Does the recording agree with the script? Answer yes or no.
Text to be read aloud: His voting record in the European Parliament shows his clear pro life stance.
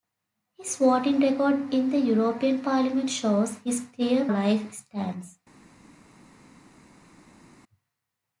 no